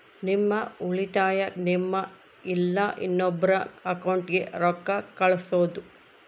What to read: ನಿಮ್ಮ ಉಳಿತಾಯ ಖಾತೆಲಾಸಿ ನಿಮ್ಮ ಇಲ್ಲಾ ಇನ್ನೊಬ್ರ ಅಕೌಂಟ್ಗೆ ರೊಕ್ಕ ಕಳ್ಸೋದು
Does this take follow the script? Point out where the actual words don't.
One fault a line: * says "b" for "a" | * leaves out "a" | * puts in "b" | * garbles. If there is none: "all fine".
* leaves out "ಖಾತೆಲಾಸಿ"